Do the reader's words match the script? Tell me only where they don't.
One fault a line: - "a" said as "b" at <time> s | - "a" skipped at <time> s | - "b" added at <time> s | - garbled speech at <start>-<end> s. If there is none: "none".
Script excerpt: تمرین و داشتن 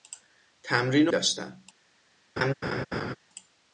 none